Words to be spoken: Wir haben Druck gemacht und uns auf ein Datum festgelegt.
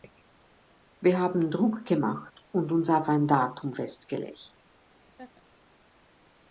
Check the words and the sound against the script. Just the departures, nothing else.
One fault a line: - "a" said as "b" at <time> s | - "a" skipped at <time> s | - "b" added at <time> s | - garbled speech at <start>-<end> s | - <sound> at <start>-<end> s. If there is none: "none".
- laugh at 5.0-5.4 s